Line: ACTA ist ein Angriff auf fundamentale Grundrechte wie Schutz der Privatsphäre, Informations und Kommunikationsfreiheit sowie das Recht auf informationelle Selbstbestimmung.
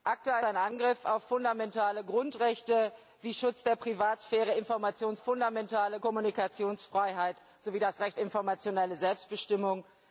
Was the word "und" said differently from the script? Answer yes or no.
yes